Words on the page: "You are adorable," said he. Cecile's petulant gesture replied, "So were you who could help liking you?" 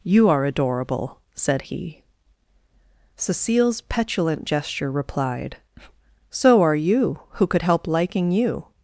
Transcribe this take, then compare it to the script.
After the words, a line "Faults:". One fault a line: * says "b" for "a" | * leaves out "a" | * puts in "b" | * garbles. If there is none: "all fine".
"You are adorable," said he. Cecile's petulant gesture replied, "So are you who could help liking you?"
Faults:
* says "are" for "were"